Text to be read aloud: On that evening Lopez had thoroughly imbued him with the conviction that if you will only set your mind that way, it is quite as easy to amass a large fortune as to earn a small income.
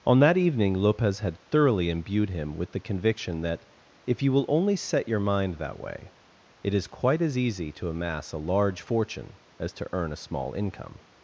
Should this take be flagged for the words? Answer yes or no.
no